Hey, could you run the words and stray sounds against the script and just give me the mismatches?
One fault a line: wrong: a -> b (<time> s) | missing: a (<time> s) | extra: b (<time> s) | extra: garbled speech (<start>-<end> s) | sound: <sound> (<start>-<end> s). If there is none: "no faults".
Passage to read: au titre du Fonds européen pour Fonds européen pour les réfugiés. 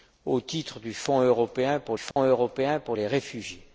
sound: dropout (2.1-2.2 s)